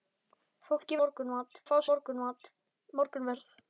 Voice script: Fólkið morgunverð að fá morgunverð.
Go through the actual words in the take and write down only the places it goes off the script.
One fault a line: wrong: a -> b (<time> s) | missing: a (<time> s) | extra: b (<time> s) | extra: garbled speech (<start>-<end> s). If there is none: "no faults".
no faults